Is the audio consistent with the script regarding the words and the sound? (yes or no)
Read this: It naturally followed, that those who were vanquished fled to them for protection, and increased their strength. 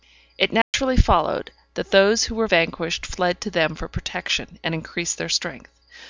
no